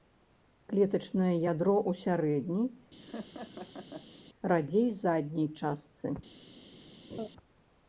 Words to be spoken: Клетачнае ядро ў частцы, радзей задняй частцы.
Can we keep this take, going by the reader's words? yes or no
no